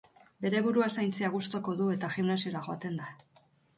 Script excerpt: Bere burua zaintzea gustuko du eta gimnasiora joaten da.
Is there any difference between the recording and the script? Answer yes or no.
no